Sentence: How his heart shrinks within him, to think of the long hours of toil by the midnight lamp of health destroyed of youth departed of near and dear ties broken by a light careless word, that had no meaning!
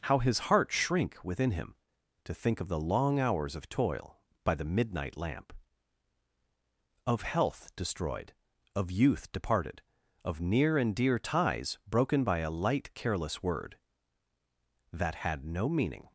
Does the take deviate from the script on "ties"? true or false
false